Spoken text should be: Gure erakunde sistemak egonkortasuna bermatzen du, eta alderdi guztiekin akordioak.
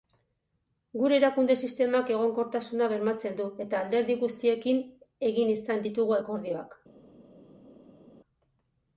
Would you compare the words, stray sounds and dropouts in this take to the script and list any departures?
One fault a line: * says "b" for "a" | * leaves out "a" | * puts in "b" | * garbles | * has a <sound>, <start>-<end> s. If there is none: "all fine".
* puts in "egin izan ditugu"